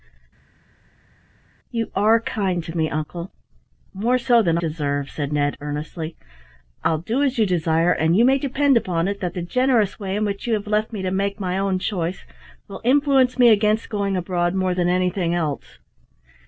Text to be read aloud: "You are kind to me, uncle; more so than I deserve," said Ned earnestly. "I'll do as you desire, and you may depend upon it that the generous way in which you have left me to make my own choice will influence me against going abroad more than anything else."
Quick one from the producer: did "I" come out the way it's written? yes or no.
no